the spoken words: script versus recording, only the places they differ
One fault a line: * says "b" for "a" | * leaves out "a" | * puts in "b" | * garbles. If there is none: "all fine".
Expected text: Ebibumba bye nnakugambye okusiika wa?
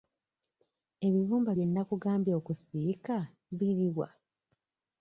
* puts in "biri"